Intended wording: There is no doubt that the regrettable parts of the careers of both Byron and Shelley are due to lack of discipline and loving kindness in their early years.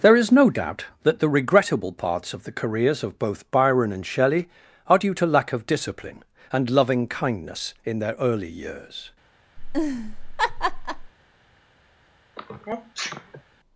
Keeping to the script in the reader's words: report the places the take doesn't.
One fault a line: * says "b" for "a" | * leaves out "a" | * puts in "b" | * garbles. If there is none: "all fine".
all fine